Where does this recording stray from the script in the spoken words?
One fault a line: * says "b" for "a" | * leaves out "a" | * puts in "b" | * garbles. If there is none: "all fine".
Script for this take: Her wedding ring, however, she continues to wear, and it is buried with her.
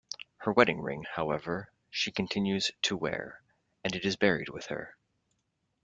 all fine